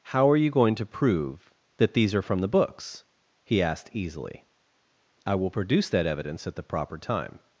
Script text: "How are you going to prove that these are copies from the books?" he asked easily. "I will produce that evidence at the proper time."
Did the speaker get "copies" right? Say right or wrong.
wrong